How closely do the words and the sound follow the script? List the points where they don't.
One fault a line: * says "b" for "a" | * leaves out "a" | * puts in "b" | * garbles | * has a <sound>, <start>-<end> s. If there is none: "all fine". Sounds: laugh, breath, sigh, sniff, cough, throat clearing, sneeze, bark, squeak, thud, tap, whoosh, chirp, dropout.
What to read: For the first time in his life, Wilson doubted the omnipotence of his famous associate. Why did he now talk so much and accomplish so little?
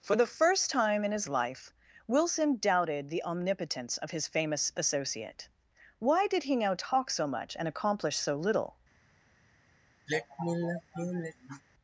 * has a sigh, 10.1-11.6 s